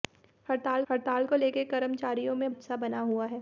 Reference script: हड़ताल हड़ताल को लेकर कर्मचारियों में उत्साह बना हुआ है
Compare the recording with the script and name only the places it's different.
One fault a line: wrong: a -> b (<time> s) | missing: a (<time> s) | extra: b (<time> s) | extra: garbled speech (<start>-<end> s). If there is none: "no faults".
no faults